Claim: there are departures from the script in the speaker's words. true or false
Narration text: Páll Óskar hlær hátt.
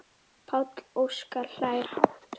false